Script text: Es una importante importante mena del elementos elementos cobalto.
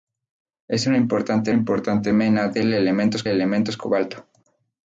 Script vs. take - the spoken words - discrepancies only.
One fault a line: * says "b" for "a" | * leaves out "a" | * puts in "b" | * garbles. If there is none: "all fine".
all fine